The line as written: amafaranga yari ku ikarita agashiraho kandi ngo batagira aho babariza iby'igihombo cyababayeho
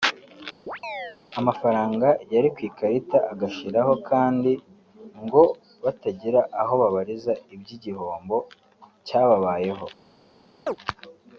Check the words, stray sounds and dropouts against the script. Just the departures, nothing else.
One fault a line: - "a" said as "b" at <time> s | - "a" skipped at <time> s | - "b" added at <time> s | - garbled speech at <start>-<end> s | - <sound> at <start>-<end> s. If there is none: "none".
- chirp at 0.7-1.2 s
- chirp at 10.7-10.8 s